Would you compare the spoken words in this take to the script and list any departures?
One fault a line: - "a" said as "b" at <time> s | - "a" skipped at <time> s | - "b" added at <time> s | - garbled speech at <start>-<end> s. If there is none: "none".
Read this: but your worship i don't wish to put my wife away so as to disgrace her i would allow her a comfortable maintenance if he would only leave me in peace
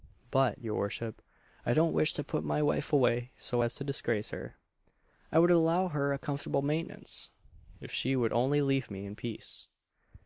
- "he" said as "she" at 7.9 s